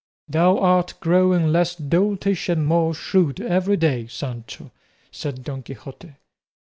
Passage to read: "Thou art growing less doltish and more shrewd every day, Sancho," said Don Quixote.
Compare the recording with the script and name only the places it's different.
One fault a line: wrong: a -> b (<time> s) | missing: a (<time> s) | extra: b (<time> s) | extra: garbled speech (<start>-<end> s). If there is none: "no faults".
no faults